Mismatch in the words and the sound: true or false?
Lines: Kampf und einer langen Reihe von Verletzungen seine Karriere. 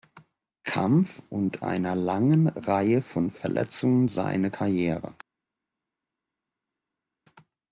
false